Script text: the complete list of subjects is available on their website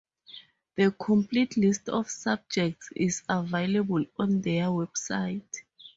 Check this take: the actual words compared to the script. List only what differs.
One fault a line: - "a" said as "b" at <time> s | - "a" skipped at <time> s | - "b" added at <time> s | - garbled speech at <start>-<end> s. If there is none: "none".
none